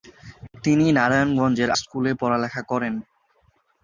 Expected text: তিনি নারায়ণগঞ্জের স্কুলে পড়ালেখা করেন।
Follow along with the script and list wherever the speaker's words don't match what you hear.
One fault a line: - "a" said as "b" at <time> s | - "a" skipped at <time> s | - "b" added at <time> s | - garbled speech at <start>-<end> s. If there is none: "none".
none